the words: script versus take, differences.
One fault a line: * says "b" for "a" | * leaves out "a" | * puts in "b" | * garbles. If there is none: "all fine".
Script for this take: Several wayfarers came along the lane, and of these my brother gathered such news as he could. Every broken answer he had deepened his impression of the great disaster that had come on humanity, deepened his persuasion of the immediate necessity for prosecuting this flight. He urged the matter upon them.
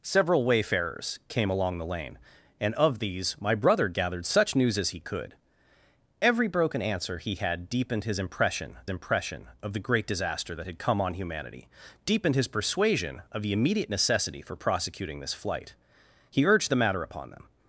* puts in "impression"